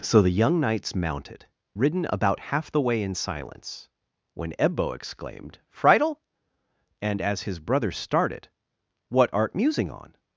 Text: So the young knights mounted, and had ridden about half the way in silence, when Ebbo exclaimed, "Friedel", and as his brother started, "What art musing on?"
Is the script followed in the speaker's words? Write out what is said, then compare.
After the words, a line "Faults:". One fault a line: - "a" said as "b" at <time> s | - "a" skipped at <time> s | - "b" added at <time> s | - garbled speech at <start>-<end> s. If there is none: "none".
So the young knights mounted, ridden about half the way in silence, when Ebbo exclaimed, "Friedel", and as his brother started, "What art musing on?"
Faults:
- "and had" skipped at 1.4 s